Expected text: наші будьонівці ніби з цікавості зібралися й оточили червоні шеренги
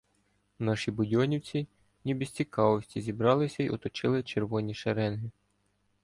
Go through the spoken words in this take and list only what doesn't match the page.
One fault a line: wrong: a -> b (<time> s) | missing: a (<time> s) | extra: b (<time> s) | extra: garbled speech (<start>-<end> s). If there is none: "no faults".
no faults